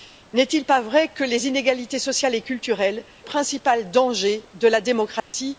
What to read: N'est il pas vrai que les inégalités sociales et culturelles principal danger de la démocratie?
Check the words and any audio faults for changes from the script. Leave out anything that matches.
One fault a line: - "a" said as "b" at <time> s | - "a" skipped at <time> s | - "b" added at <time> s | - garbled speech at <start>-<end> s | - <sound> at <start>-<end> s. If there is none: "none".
- dropout at 5.2-5.3 s